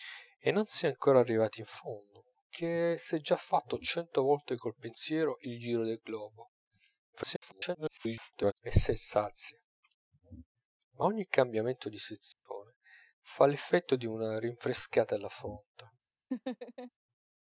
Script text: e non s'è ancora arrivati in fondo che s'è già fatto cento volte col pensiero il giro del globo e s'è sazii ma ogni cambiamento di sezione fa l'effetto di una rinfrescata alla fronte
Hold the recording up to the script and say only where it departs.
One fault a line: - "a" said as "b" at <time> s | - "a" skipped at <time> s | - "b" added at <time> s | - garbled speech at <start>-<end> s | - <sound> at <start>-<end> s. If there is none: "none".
- garbled speech at 7.1-8.5 s
- dropout at 12.3-12.5 s
- laugh at 16.3-16.9 s